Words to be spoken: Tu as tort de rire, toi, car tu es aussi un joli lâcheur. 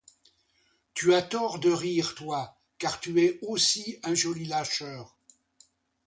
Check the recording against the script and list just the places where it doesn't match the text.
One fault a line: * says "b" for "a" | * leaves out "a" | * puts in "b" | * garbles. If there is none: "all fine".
all fine